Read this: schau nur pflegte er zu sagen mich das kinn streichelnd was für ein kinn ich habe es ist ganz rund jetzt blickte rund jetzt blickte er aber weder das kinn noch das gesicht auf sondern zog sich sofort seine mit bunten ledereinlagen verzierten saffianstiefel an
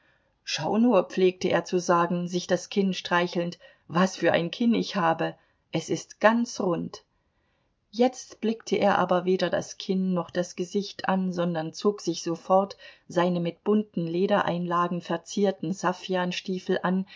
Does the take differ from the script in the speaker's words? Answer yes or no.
yes